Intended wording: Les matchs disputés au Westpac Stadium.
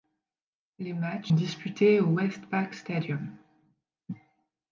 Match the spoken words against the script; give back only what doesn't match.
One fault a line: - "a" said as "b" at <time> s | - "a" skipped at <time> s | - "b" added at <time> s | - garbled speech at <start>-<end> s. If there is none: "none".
none